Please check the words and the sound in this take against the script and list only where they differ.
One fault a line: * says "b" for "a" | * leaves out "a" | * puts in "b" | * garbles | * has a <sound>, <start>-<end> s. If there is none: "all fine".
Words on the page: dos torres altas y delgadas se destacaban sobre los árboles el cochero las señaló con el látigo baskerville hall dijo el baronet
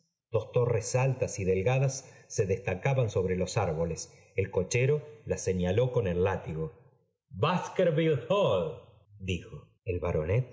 all fine